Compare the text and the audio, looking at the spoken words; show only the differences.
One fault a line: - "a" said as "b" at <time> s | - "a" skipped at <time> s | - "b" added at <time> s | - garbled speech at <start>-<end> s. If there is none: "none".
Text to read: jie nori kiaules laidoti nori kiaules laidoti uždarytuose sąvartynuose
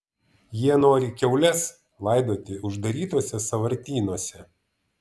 - "nori kiaules laidoti" skipped at 2.6 s